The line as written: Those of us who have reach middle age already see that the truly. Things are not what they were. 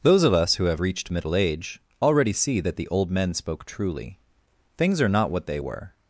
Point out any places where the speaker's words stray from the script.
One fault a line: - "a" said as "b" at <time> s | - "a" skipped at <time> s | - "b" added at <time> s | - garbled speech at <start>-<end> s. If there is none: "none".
- "reach" said as "reached" at 0.8 s
- "old men spoke" added at 2.9 s